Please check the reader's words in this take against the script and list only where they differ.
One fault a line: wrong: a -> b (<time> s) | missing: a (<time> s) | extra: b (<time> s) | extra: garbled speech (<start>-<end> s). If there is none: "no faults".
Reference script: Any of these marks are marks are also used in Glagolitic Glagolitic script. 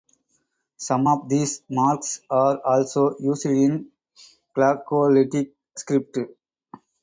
wrong: Any -> Some (0.8 s)
missing: marks are (2.6 s)
missing: Glagolitic (5.5 s)